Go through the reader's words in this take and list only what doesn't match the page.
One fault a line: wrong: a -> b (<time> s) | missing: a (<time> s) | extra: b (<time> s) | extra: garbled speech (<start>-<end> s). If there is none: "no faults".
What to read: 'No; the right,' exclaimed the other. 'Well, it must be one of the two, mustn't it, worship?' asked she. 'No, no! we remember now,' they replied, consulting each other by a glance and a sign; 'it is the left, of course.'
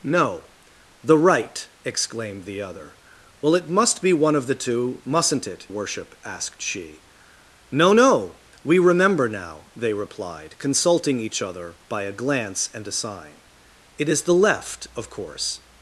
no faults